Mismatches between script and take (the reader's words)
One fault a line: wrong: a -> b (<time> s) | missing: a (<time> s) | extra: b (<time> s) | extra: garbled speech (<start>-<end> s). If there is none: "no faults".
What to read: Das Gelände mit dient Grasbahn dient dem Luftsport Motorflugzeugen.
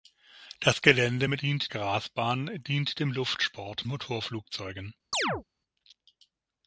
no faults